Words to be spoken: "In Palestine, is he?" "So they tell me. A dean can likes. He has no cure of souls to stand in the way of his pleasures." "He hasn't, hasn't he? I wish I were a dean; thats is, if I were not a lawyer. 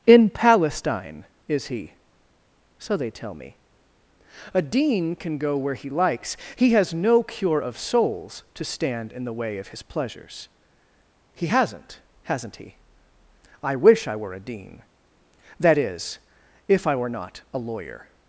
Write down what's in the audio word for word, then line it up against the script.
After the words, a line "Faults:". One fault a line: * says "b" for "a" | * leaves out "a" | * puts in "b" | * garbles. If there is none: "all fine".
"In Palestine, is he?" "So they tell me. A dean can go where he likes. He has no cure of souls to stand in the way of his pleasures." "He hasn't, hasn't he? I wish I were a dean; that is, if I were not a lawyer.
Faults:
* puts in "go where he"
* says "that" for "thats"